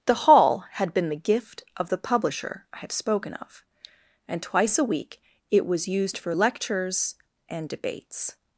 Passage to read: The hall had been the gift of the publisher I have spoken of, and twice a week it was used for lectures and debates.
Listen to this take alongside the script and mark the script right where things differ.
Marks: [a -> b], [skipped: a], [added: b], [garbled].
The hall had been the gift of the publisher I have spoken of, and twice a week it was used for lectures and debates.